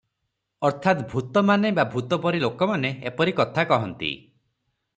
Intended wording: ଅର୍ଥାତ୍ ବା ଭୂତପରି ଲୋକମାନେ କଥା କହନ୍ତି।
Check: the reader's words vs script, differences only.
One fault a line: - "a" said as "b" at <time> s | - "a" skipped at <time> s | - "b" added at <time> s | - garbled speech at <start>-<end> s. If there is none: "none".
- "ଭୂତମାନେ" added at 1.1 s
- "ଏପରି" added at 3.0 s